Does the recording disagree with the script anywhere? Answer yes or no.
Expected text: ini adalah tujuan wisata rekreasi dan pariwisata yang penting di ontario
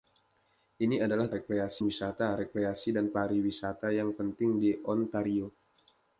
yes